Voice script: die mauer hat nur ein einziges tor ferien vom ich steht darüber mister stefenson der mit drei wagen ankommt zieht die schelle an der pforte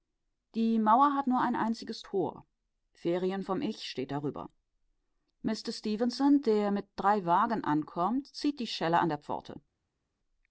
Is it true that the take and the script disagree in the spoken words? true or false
false